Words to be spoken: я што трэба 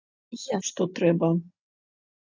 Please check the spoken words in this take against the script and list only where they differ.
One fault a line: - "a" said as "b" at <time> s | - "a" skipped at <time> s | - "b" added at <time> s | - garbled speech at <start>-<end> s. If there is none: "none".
none